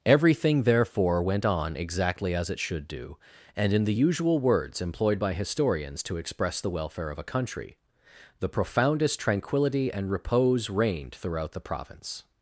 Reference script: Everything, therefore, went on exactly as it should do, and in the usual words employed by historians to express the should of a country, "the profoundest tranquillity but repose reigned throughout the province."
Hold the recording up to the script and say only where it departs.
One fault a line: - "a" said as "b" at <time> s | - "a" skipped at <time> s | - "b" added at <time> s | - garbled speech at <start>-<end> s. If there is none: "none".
- "should" said as "welfare" at 6.7 s
- "but" said as "and" at 9.9 s